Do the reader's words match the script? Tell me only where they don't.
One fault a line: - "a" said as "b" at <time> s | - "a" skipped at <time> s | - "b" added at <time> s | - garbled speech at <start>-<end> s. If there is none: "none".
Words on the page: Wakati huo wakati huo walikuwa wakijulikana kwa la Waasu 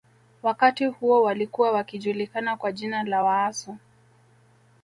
- "wakati huo" skipped at 1.2 s
- "jina" added at 2.7 s